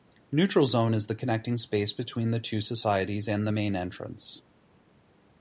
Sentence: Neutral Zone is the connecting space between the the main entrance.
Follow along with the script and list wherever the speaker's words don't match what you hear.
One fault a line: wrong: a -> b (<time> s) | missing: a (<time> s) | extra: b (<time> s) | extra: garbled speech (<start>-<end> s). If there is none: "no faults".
extra: two societies and (2.4 s)